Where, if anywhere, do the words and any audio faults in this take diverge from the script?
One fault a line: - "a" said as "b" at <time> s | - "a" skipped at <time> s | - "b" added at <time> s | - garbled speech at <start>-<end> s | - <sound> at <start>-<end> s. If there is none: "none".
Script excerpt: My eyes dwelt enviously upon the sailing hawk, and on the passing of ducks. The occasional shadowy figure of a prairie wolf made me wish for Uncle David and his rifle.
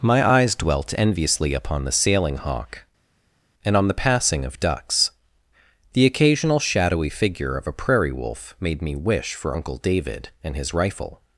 none